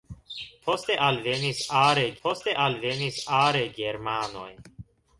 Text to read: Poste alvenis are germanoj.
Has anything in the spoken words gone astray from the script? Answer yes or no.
yes